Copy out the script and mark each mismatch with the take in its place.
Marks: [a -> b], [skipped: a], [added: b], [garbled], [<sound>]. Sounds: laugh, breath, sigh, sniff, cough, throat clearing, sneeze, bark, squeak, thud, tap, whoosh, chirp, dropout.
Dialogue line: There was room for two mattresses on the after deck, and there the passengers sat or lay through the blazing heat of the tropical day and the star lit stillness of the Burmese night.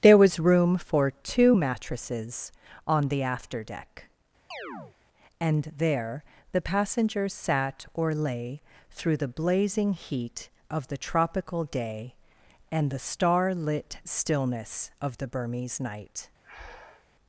There was room for two mattresses on the after deck, [chirp] and there the passengers sat or lay through the blazing heat of the tropical day and the star lit stillness of the Burmese night. [breath]